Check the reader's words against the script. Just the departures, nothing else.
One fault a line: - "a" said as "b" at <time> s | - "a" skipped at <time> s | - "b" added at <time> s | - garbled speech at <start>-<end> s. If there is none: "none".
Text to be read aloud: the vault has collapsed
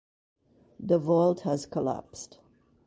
none